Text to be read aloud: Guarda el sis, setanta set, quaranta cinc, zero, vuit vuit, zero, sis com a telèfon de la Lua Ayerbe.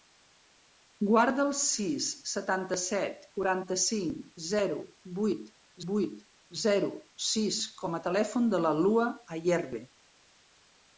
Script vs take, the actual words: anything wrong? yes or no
no